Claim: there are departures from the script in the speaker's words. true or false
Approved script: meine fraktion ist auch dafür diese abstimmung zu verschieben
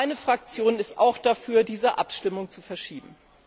false